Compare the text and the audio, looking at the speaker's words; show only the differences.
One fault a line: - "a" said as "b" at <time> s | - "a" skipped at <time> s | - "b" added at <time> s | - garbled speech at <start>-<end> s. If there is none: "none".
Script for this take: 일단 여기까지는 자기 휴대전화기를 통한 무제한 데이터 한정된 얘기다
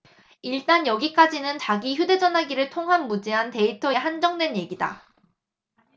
none